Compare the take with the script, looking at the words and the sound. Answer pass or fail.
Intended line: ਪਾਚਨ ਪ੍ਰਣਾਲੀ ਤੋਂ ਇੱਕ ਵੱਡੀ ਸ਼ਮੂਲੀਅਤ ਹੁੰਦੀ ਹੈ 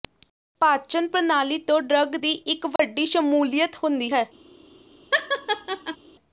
fail